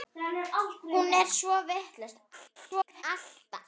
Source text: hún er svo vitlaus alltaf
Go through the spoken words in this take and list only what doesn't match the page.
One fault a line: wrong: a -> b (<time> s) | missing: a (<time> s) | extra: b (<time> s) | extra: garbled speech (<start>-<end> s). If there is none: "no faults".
extra: garbled speech (2.3-3.0 s)